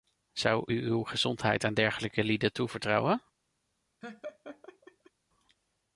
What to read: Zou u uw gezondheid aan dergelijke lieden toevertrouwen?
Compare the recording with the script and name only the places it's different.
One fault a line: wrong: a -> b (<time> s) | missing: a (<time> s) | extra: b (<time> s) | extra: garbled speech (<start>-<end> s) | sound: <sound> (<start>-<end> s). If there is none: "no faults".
sound: laugh (4.0-5.1 s)